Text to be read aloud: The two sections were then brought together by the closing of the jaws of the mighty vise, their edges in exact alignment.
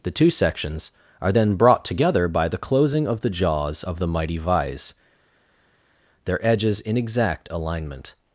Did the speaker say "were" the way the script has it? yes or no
no